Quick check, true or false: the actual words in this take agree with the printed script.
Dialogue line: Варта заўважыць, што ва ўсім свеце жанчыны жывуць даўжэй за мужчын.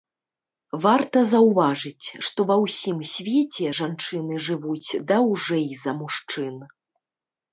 true